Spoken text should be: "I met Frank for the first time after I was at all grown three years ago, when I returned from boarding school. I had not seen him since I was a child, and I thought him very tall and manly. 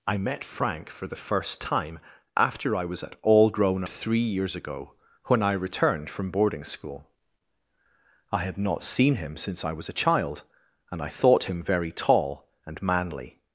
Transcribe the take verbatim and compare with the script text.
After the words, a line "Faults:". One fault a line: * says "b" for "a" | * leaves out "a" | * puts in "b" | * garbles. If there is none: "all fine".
"I met Frank for the first time after I was at all grown three years ago, when I returned from boarding school. I had not seen him since I was a child, and I thought him very tall and manly.
Faults:
all fine